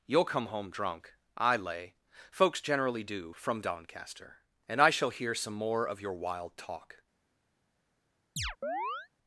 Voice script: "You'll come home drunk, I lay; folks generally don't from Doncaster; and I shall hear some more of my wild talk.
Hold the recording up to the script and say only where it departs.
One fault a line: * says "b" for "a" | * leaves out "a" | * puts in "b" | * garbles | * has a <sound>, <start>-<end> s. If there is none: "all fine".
* says "do" for "don't"
* says "your" for "my"
* has a chirp, 8.4-9.1 s